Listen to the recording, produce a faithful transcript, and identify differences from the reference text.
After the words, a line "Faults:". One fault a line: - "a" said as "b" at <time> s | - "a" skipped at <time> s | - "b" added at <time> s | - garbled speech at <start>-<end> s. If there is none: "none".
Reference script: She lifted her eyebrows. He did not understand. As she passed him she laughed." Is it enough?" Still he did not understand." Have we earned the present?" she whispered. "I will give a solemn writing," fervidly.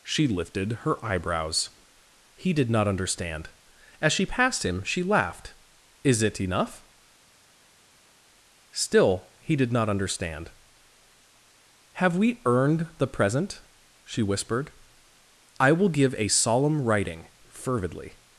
She lifted her eyebrows. He did not understand. As she passed him she laughed." Is it enough?" Still he did not understand." Have we earned the present?" she whispered. "I will give a solemn writing," fervidly.
Faults:
none